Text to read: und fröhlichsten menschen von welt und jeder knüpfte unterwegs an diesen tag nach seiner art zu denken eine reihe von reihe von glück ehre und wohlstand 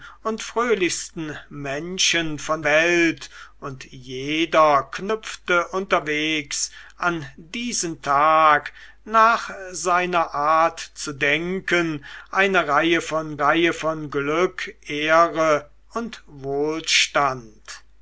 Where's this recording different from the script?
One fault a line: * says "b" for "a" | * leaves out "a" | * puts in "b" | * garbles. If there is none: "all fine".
all fine